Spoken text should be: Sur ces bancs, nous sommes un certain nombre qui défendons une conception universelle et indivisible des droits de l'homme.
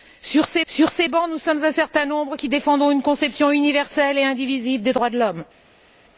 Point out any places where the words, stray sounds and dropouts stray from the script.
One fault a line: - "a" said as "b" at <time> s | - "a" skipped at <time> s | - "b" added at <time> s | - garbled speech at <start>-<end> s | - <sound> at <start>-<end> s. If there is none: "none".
- "sur ces" added at 0.7 s